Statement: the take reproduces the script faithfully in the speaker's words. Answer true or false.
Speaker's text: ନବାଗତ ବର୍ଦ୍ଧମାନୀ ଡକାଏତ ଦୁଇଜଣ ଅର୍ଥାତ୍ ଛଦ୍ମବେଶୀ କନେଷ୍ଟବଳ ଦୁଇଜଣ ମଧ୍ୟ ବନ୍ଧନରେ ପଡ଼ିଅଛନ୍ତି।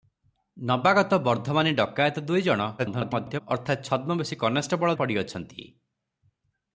false